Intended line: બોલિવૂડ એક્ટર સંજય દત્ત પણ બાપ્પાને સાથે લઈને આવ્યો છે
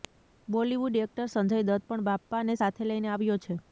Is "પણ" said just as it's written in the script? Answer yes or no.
yes